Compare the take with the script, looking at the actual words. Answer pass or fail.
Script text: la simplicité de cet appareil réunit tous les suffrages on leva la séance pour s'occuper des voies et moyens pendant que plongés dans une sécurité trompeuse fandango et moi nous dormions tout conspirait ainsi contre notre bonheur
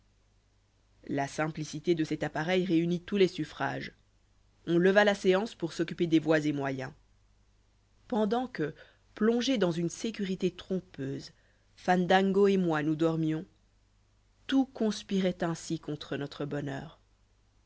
pass